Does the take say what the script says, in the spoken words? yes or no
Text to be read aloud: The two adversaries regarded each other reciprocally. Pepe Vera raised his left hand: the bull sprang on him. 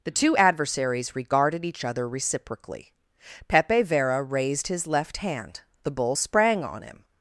yes